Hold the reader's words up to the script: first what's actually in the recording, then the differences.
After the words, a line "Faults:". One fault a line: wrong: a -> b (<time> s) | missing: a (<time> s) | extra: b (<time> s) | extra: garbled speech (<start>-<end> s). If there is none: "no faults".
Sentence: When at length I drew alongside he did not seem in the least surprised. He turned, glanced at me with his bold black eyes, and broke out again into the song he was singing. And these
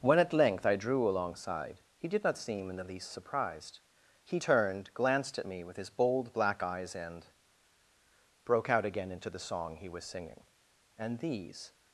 When at length I drew alongside he did not seem in the least surprised. He turned, glanced at me with his bold black eyes, and broke out again into the song he was singing. And these
Faults:
no faults